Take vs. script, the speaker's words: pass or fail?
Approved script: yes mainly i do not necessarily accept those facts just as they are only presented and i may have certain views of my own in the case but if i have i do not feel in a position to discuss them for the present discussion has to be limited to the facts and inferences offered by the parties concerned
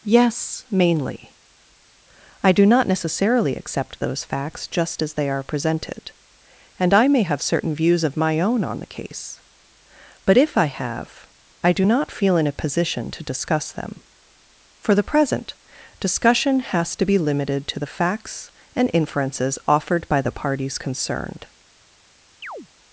fail